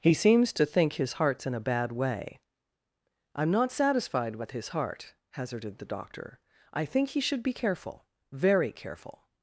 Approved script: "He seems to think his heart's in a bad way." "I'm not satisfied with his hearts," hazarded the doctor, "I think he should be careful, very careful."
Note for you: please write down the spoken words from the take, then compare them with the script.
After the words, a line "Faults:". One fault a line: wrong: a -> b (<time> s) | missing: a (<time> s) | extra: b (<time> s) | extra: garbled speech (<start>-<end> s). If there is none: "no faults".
"He seems to think his heart's in a bad way." "I'm not satisfied with his heart," hazarded the doctor, "I think he should be careful, very careful."
Faults:
wrong: hearts -> heart (4.7 s)